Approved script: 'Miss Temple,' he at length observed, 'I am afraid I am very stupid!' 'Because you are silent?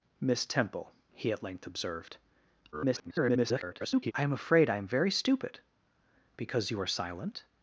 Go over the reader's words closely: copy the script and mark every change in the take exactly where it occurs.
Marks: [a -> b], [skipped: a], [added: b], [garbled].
'Miss Temple,' he at length observed, [garbled] 'I am afraid I am very stupid!' 'Because you are silent?